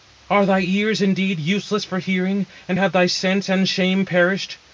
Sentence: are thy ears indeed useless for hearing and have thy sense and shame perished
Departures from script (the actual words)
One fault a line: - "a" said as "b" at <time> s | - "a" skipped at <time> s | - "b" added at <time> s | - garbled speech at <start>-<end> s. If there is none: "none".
none